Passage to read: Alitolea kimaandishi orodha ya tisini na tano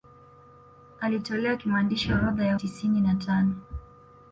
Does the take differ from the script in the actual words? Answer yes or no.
no